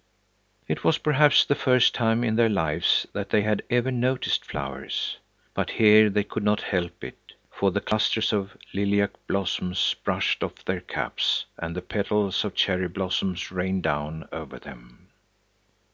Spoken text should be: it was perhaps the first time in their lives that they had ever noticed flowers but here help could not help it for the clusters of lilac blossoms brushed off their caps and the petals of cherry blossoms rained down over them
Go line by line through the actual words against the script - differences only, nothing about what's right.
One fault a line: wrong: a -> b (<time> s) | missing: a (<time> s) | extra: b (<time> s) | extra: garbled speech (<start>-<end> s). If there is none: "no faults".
wrong: help -> they (6.1 s)